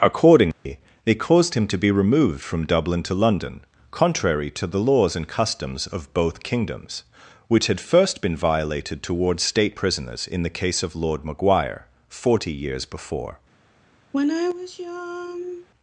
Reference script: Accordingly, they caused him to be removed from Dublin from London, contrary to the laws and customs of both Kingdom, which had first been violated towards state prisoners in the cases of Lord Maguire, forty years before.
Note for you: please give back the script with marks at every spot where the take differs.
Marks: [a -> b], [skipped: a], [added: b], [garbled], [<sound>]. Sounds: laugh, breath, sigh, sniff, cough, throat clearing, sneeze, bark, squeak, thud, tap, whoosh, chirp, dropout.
Accordingly, [dropout] they caused him to be removed from Dublin [from -> to] London, contrary to the laws and customs of both [Kingdom, -> Kingdoms] which had first been violated towards state prisoners in the [cases -> case] of Lord Maguire, forty years before. [sigh]